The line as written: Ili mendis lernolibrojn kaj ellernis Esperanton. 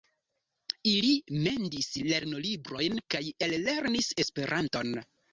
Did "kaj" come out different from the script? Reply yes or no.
no